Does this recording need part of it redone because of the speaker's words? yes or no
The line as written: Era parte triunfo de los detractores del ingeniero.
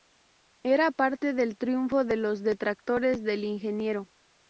yes